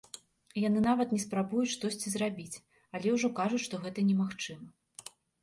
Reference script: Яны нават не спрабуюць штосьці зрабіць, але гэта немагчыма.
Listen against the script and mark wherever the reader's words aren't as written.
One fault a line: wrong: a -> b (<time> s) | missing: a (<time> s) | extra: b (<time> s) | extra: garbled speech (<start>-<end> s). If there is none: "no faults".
extra: ўжо кажуць што (3.2 s)